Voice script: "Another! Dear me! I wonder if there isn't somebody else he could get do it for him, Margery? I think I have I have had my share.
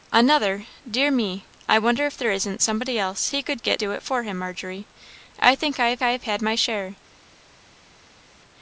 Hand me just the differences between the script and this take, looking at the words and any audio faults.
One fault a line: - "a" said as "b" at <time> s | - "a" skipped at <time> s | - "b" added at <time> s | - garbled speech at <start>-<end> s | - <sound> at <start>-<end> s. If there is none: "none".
none